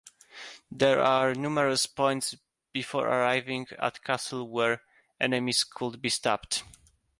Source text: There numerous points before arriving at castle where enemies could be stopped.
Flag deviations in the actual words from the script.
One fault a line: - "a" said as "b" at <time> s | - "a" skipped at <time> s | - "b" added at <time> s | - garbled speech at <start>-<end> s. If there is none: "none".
- "are" added at 1.0 s